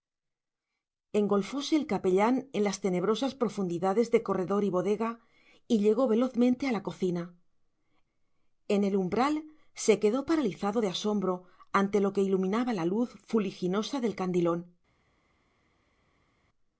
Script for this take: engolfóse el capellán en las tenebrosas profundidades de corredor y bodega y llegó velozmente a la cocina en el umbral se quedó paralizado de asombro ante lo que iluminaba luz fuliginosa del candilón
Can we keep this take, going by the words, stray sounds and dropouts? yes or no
no